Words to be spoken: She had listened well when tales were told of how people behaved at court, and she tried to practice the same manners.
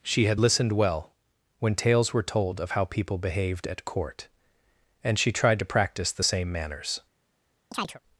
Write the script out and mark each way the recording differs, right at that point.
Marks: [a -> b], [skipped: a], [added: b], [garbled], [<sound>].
She had listened well when tales were told of how people behaved at court, and she tried to practice the same manners. [chirp]